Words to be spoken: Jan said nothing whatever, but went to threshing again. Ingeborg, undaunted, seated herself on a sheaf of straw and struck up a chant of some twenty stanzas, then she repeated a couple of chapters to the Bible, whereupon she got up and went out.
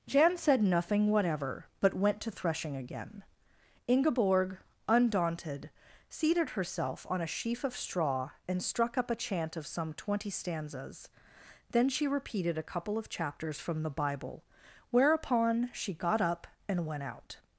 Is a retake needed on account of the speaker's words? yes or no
yes